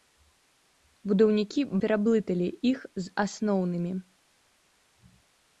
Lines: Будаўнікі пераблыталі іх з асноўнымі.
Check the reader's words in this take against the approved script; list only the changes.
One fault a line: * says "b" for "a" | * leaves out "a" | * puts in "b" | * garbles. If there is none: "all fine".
all fine